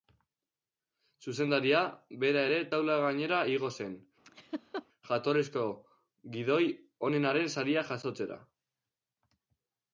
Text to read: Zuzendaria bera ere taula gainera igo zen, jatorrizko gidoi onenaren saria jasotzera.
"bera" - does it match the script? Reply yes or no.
yes